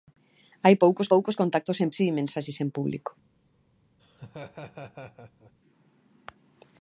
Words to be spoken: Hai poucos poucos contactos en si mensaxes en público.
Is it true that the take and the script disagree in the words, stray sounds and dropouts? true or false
true